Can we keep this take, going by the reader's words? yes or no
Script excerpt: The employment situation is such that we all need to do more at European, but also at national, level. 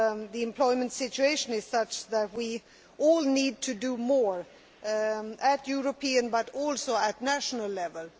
yes